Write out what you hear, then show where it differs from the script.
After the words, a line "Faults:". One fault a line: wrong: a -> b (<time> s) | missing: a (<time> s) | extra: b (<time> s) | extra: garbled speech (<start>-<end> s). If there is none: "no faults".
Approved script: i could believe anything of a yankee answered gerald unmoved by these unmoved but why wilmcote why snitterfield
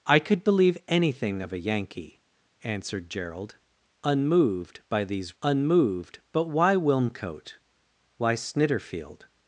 i could believe anything of a yankee answered gerald unmoved by these unmoved but why wilmcote why snitterfield
Faults:
no faults